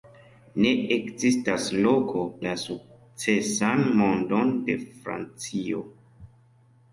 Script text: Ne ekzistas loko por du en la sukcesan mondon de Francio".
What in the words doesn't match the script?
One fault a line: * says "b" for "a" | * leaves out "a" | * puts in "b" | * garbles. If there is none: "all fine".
* leaves out "por du en"